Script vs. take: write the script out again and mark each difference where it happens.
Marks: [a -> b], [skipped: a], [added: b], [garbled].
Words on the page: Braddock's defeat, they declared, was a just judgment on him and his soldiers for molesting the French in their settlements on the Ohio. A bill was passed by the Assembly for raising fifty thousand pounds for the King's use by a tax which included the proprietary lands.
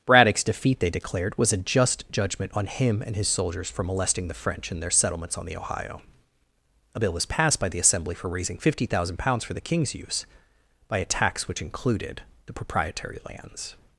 Braddock's defeat, they declared, was a just judgment on him and his soldiers for molesting the French in their settlements on the Ohio. A bill was passed by the Assembly for raising fifty thousand pounds for the King's use by a tax which included the proprietary lands.